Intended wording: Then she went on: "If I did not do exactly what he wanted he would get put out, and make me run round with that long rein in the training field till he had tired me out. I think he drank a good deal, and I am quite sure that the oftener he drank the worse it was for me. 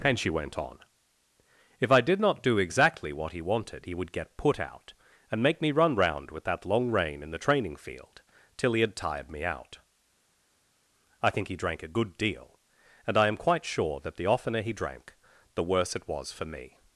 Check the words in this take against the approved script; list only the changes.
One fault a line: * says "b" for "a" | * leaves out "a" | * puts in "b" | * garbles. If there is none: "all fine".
* says "And" for "Then"